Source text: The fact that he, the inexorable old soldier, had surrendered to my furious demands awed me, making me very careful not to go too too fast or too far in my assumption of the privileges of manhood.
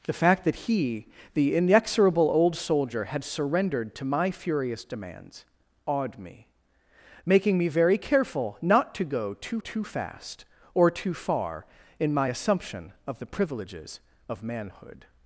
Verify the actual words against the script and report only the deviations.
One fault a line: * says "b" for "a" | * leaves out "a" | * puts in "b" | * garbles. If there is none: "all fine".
all fine